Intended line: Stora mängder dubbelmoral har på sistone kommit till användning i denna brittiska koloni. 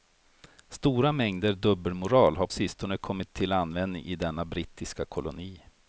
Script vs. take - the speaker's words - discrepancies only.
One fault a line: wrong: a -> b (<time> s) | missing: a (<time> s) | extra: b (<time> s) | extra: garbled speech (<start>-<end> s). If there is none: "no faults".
missing: på (2.5 s)